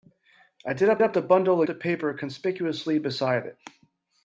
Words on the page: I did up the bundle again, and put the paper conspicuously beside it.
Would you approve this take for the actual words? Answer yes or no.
no